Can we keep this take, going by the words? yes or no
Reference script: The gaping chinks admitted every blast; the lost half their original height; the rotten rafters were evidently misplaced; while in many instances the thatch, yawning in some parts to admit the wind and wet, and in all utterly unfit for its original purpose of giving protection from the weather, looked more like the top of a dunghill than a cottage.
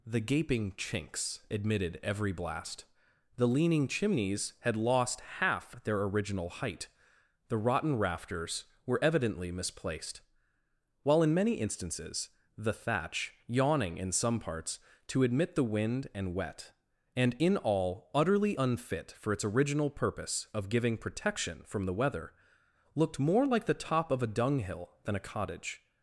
no